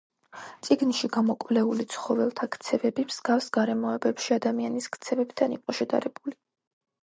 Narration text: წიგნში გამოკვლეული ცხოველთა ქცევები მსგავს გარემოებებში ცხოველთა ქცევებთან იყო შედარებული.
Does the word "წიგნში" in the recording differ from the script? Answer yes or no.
no